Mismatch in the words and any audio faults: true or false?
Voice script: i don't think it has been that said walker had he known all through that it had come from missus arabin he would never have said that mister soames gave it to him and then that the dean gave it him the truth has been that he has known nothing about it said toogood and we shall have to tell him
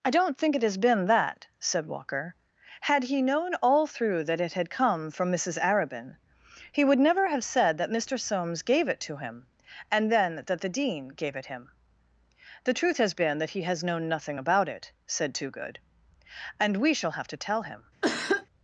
true